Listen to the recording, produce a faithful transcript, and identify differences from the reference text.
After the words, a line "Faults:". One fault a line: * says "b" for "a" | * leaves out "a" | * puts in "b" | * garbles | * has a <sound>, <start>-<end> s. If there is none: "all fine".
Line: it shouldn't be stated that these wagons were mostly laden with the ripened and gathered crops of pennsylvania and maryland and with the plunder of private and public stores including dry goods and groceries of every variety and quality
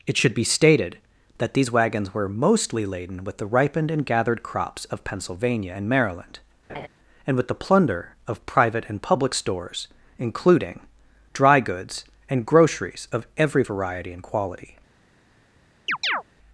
it should be stated that these wagons were mostly laden with the ripened and gathered crops of pennsylvania and maryland and with the plunder of private and public stores including dry goods and groceries of every variety and quality
Faults:
* says "should" for "shouldn't"
* has a laugh, 6.7-6.9 s
* has a chirp, 15.9-16.2 s